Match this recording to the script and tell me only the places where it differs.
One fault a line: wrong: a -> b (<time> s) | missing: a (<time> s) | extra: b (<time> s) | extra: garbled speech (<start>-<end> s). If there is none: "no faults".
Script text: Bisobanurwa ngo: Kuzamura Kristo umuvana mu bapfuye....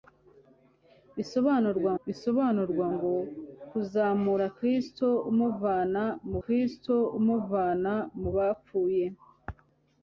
extra: bisobanurwa (2.0 s)
extra: Kristo umuvana mu (6.4 s)